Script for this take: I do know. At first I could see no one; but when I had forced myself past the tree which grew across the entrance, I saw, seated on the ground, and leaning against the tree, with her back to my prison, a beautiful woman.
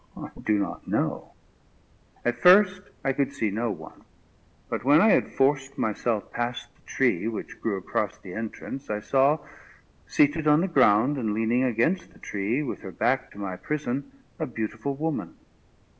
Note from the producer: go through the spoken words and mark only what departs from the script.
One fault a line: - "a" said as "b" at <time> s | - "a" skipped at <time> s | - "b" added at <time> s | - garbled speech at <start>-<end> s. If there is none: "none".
- "not" added at 0.6 s